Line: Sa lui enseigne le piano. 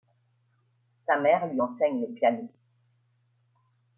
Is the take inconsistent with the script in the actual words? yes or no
yes